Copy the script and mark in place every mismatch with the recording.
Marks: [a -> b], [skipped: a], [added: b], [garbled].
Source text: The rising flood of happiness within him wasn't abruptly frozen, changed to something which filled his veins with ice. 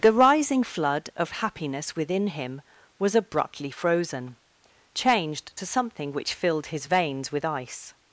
The rising flood of happiness within him [wasn't -> was] abruptly frozen, changed to something which filled his veins with ice.